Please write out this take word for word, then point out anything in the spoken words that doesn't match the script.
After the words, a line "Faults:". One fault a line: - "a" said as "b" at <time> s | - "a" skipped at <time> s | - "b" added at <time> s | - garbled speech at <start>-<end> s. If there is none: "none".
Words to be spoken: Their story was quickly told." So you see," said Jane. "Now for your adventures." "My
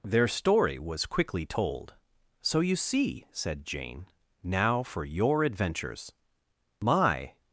Their story was quickly told." So you see," said Jane. "Now for your adventures." "My
Faults:
none